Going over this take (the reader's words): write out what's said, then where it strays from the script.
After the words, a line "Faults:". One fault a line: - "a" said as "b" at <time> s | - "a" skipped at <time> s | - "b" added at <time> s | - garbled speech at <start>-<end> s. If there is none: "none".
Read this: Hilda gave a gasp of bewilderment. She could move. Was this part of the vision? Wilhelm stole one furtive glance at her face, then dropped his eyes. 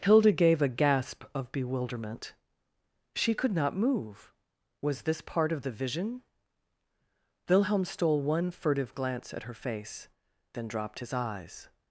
Hilda gave a gasp of bewilderment. She could not move. Was this part of the vision? Wilhelm stole one furtive glance at her face, then dropped his eyes.
Faults:
- "not" added at 3.5 s